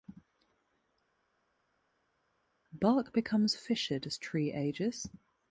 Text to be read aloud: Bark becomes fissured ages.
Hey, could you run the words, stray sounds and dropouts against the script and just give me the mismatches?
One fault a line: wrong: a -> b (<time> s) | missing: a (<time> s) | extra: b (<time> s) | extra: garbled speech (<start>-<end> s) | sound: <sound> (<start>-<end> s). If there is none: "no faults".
extra: as tree (4.1 s)